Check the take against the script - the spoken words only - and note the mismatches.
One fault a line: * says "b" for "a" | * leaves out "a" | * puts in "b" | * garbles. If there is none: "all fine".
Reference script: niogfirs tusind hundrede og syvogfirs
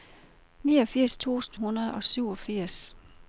all fine